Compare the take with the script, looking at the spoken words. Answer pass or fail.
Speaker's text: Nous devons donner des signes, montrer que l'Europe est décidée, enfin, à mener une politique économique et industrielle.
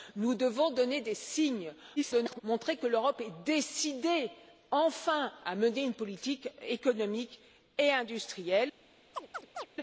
fail